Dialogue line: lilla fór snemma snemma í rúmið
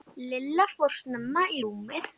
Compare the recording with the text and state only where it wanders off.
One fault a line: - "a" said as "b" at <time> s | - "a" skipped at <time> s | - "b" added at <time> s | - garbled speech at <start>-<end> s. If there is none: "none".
- "snemma" skipped at 1.5 s